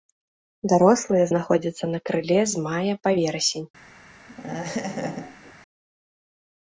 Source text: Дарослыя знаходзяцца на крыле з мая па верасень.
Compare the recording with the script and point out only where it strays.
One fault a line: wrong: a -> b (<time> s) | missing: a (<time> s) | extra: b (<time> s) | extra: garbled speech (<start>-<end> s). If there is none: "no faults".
no faults